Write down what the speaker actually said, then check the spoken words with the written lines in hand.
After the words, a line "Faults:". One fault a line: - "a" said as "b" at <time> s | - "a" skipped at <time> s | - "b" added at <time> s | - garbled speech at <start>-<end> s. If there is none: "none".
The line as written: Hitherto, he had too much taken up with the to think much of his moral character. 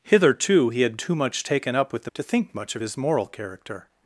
Hitherto, he had too much taken up with the to think much of his moral character.
Faults:
none